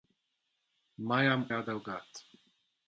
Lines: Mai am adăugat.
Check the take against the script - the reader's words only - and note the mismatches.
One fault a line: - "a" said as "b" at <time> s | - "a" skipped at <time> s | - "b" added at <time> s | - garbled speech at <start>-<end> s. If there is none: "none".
none